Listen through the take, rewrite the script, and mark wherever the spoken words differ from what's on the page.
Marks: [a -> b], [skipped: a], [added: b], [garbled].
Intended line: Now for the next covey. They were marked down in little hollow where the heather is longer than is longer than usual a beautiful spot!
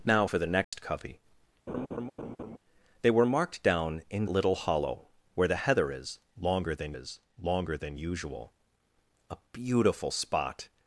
Now for the next covey. They were marked down in little hollow where the heather is longer than is longer than usual a beautiful spot!